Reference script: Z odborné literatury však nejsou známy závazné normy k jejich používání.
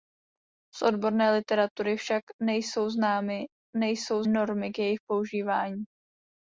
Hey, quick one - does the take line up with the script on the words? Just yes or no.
no